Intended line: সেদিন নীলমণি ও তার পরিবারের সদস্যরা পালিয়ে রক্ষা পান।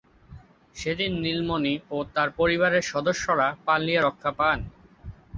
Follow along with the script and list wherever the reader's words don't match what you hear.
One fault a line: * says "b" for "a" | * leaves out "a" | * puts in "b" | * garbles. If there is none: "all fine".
all fine